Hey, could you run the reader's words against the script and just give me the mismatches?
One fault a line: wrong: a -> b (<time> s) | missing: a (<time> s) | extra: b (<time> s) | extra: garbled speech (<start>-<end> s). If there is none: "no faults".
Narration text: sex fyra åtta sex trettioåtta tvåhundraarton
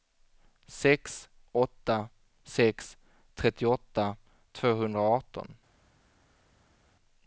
missing: fyra (1.3 s)